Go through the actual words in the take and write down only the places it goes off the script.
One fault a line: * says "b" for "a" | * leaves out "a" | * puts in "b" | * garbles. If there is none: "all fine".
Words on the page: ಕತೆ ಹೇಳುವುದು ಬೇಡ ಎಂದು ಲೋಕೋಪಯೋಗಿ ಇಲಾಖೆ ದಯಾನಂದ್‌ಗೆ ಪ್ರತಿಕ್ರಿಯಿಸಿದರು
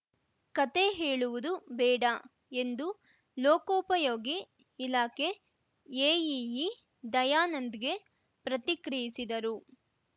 * puts in "ಎಇಇ"